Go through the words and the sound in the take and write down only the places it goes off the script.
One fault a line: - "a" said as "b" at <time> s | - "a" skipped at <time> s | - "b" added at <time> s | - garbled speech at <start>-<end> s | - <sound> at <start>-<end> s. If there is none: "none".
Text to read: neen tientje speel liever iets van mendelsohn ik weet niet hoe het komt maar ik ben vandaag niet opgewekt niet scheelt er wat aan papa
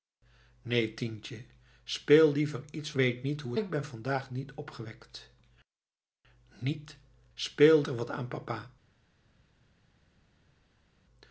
- "van mendelsohn ik" skipped at 2.9 s
- "het komt maar" skipped at 3.5 s
- "scheelt" said as "speel" at 7.3 s